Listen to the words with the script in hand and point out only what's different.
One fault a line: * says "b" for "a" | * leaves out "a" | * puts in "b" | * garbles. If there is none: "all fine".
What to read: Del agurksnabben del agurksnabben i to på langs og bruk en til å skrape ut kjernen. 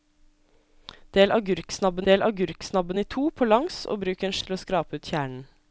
all fine